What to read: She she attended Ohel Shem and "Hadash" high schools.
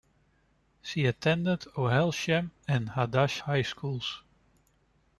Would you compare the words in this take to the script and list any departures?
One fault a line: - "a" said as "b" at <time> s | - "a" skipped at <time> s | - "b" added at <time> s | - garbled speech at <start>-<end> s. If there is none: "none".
- "she" skipped at 1.1 s